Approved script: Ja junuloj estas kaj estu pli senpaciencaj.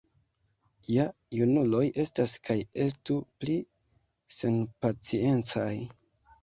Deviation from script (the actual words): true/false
false